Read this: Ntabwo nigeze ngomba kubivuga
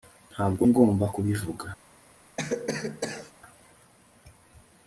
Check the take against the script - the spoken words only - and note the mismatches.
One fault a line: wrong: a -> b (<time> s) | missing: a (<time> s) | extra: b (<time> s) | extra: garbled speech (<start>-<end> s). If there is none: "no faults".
missing: nigeze (0.6 s)